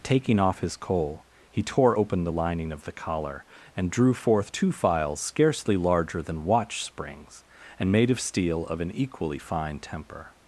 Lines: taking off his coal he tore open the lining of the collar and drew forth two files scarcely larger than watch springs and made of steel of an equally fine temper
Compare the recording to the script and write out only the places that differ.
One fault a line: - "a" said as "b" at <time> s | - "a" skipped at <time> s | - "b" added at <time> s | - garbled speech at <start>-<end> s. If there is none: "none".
none